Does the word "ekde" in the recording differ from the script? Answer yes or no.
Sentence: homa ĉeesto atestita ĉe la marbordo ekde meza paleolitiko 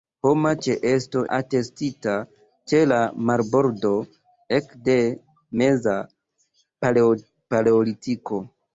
no